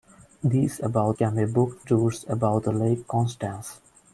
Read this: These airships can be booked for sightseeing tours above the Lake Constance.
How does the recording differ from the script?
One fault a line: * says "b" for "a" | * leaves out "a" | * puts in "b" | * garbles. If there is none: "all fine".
* says "above" for "airships"
* leaves out "for sightseeing"